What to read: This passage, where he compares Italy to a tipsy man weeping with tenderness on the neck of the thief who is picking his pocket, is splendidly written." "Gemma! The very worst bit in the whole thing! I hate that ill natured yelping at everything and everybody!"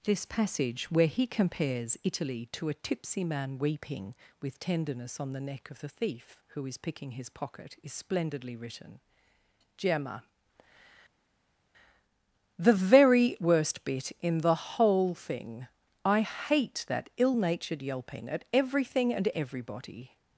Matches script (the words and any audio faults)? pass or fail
pass